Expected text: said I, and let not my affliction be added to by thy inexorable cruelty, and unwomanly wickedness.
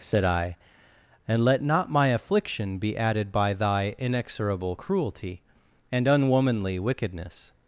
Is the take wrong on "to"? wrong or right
wrong